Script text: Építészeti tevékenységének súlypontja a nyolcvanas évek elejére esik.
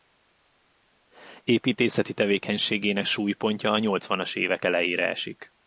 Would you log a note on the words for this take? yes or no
no